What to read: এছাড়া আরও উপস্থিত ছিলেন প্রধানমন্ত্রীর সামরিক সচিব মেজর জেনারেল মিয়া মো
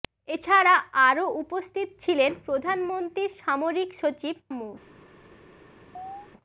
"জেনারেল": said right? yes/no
no